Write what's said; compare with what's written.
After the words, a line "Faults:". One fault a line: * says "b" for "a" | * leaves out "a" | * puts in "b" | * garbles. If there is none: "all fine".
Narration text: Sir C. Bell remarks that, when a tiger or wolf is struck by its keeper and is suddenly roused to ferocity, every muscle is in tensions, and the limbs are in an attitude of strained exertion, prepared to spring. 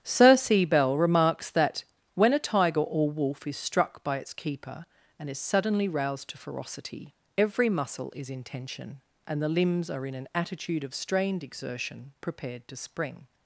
Sir C. Bell remarks that, when a tiger or wolf is struck by its keeper and is suddenly roused to ferocity, every muscle is in tension, and the limbs are in an attitude of strained exertion, prepared to spring.
Faults:
* says "tension" for "tensions"